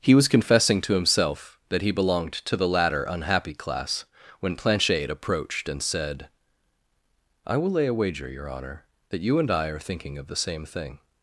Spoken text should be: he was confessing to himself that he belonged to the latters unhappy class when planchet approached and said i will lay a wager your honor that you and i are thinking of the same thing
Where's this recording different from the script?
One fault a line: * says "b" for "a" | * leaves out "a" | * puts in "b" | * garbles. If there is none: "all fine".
* says "latter" for "latters"